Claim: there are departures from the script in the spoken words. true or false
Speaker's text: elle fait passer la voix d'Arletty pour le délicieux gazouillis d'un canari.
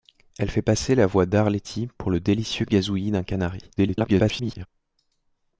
true